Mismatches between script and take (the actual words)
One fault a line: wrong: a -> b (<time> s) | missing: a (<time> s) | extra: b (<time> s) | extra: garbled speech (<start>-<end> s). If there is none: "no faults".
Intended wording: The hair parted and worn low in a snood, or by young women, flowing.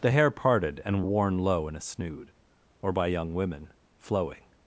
no faults